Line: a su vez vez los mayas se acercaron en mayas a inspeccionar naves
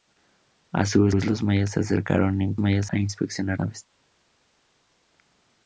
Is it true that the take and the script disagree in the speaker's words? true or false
false